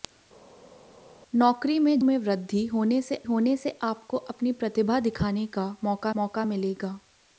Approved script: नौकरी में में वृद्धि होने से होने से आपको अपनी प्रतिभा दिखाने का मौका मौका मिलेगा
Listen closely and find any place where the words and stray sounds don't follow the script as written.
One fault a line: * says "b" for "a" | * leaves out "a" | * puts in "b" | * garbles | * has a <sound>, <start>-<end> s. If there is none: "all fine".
all fine